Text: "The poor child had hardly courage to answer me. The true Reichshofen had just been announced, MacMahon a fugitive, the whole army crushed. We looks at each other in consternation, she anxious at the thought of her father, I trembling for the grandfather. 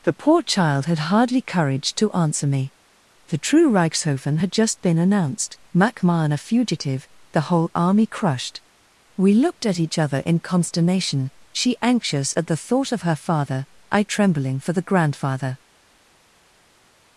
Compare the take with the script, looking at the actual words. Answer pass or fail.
fail